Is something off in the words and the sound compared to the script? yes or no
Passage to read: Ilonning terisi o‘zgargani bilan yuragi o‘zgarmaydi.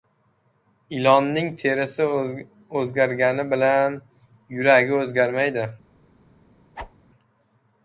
yes